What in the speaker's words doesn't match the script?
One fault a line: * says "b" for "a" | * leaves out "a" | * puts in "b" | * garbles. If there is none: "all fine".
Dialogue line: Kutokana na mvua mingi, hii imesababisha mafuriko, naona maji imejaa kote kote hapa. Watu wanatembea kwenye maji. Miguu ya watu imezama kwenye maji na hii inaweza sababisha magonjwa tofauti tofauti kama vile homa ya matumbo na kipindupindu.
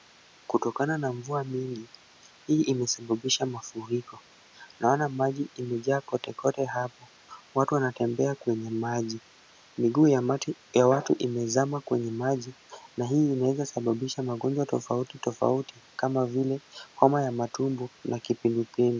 all fine